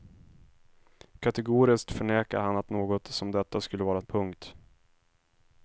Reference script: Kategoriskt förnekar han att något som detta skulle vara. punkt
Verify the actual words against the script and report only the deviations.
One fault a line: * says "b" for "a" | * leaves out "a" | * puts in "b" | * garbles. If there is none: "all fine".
all fine